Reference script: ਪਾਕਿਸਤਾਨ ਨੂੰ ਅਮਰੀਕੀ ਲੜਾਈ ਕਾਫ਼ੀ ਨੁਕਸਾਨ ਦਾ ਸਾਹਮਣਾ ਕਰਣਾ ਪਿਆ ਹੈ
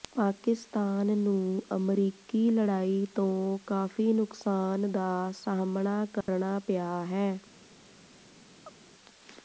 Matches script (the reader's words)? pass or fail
fail